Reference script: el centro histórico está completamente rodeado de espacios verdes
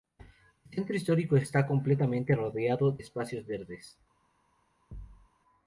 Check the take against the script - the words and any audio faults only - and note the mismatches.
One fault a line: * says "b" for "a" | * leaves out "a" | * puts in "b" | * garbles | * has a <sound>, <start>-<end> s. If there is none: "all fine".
* leaves out "de"
* has a thud, 4.9-5.3 s